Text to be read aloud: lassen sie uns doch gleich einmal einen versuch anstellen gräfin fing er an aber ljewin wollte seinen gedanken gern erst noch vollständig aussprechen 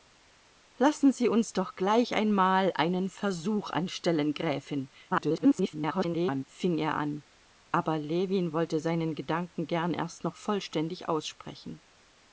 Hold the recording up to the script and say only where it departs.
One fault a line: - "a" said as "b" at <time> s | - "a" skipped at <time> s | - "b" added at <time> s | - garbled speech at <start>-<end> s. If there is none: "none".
- garbled speech at 5.1-6.4 s